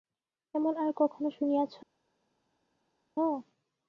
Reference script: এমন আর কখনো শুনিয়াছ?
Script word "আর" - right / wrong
right